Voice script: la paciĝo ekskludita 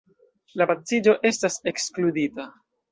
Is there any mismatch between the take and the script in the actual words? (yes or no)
yes